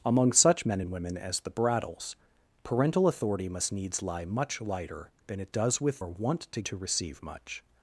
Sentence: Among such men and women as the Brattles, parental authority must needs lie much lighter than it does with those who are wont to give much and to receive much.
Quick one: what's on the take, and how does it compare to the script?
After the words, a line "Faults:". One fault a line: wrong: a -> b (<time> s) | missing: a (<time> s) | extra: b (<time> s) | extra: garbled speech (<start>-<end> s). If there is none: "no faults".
Among such men and women as the Brattles, parental authority must needs lie much lighter than it does with are wont to to receive much.
Faults:
missing: those who (6.0 s)
missing: give much and (6.6 s)